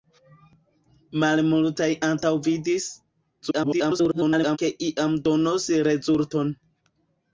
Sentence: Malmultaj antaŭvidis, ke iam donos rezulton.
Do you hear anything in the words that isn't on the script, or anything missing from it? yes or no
yes